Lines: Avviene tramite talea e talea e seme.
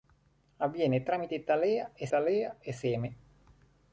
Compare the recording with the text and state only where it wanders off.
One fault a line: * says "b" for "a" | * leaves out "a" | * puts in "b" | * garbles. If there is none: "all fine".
all fine